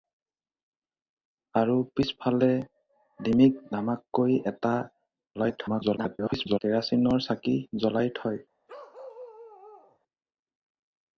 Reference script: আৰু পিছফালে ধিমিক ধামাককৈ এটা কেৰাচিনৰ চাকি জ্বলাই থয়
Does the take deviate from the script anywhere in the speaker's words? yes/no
yes